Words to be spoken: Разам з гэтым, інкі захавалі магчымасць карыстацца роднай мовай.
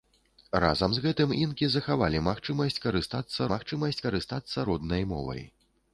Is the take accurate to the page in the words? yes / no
no